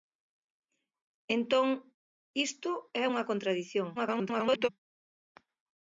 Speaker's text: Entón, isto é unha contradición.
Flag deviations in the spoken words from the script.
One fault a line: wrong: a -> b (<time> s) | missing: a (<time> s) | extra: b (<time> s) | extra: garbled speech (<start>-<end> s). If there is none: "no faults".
extra: garbled speech (4.0-4.7 s)